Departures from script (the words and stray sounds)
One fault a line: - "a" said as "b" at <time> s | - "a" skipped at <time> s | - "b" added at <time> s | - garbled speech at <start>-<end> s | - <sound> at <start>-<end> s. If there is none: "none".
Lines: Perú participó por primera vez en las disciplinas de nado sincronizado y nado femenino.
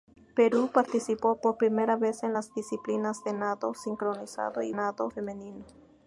none